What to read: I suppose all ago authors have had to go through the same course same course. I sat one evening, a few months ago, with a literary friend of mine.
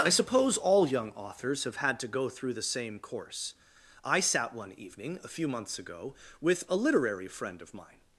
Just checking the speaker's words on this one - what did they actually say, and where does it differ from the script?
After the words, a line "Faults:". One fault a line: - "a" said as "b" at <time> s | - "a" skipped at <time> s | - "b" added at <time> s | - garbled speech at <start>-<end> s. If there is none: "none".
I suppose all young authors have had to go through the same course. I sat one evening, a few months ago, with a literary friend of mine.
Faults:
- "ago" said as "young" at 0.9 s
- "same course" skipped at 3.5 s